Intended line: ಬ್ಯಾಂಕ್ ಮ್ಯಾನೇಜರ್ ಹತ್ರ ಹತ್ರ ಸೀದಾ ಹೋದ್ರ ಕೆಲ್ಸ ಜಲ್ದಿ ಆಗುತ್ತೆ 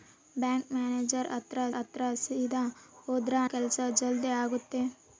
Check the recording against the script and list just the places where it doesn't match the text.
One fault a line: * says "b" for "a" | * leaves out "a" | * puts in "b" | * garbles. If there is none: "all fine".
all fine